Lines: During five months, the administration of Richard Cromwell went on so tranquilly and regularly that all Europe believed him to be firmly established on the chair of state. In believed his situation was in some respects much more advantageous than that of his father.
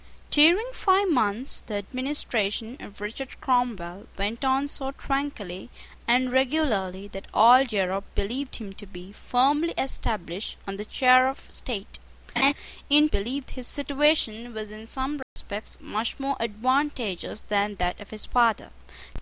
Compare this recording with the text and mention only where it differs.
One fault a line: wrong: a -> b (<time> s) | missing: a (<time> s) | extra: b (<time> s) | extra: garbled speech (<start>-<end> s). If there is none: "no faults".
no faults